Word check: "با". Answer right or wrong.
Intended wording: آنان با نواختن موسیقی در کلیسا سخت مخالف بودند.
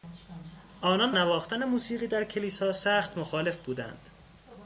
wrong